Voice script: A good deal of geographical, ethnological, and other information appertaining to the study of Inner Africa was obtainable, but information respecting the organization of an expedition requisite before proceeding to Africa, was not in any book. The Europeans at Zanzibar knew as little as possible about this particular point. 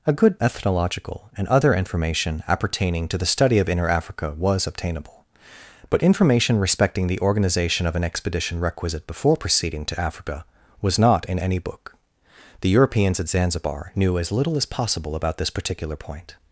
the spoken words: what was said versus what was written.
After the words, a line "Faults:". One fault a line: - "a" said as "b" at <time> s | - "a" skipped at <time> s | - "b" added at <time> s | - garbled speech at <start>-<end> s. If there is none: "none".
A good ethnological, and other information appertaining to the study of Inner Africa was obtainable, but information respecting the organization of an expedition requisite before proceeding to Africa, was not in any book. The Europeans at Zanzibar knew as little as possible about this particular point.
Faults:
- "deal of geographical" skipped at 0.4 s